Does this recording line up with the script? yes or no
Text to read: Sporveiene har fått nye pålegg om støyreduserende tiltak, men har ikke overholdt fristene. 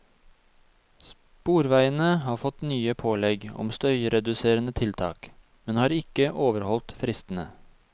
yes